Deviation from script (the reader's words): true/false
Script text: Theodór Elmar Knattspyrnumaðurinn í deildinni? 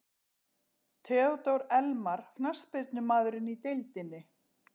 false